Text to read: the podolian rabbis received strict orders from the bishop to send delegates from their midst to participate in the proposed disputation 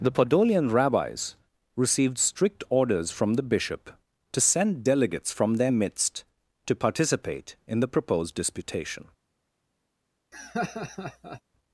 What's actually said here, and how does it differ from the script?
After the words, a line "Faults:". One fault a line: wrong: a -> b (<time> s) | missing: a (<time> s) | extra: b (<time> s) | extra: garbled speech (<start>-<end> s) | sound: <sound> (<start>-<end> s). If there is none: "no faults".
the podolian rabbis received strict orders from the bishop to send delegates from their midst to participate in the proposed disputation
Faults:
sound: laugh (10.3-11.4 s)